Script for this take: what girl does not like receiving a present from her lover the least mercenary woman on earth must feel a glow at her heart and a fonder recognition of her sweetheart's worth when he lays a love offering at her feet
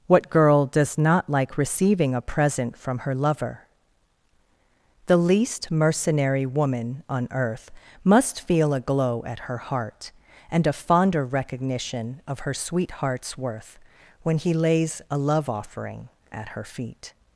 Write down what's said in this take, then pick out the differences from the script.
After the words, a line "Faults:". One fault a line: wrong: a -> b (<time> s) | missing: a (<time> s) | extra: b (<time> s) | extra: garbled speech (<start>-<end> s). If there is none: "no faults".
what girl does not like receiving a present from her lover the least mercenary woman on earth must feel a glow at her heart and a fonder recognition of her sweetheart's worth when he lays a love offering at her feet
Faults:
no faults